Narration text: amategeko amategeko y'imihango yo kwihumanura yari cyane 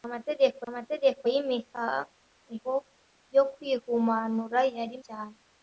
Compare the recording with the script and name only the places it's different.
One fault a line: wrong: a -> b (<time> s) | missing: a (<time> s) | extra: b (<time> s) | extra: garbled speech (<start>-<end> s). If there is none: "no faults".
no faults